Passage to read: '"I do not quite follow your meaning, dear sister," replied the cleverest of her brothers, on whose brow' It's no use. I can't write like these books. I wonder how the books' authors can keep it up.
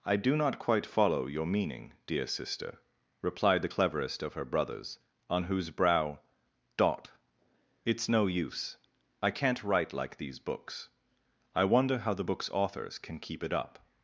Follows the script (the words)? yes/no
no